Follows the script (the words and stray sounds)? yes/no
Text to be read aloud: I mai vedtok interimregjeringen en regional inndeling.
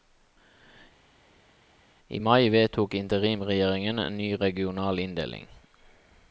no